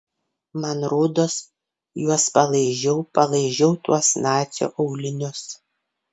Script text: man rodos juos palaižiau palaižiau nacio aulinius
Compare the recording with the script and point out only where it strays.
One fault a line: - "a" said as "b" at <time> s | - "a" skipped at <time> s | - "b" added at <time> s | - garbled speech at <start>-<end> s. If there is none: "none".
- "tuos" added at 3.8 s